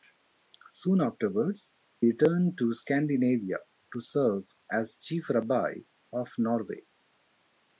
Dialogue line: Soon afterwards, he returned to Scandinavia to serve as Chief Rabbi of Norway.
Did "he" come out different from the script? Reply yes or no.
yes